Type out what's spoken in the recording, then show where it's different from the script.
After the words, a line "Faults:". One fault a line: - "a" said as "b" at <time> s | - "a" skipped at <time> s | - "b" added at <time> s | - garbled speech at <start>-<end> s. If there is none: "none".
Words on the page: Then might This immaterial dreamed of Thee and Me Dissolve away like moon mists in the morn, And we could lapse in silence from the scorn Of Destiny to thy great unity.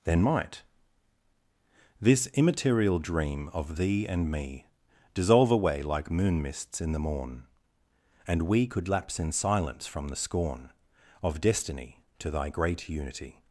Then might This immaterial dream of Thee and Me Dissolve away like moon mists in the morn, And we could lapse in silence from the scorn Of Destiny to thy great unity.
Faults:
- "dreamed" said as "dream" at 3.0 s